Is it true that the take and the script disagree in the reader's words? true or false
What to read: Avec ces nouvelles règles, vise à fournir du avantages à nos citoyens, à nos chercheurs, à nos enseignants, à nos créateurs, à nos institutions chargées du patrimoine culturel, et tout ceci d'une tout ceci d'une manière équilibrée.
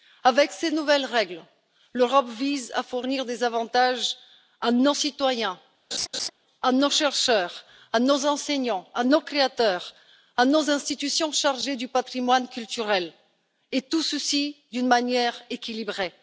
true